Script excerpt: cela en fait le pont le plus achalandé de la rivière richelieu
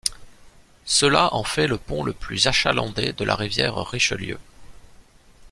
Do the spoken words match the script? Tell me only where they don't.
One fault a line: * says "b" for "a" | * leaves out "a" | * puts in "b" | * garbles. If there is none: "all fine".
all fine